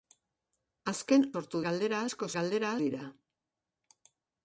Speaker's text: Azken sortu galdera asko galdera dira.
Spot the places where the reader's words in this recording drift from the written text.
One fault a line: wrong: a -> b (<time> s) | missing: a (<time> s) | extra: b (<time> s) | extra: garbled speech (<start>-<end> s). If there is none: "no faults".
no faults